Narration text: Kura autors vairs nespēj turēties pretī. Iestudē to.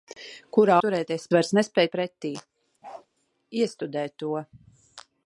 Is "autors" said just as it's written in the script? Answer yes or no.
no